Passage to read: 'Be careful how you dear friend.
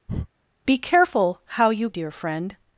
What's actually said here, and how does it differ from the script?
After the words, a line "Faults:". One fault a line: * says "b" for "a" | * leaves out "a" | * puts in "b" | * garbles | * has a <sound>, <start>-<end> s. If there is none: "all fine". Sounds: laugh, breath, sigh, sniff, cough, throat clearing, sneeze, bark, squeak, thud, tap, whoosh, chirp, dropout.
'Be careful how you dear friend.
Faults:
* has a breath, 0.1-0.3 s